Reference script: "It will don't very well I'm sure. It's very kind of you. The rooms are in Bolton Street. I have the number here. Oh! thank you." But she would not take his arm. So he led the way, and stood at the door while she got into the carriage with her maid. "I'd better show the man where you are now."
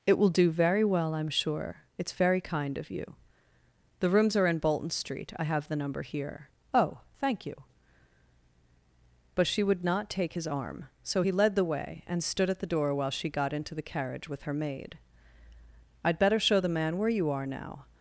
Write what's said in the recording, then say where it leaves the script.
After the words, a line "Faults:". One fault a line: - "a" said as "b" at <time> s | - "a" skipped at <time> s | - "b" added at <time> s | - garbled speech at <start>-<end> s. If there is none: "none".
"It will do very well I'm sure. It's very kind of you. The rooms are in Bolton Street. I have the number here. Oh! thank you." But she would not take his arm. So he led the way, and stood at the door while she got into the carriage with her maid. "I'd better show the man where you are now."
Faults:
- "don't" said as "do" at 0.3 s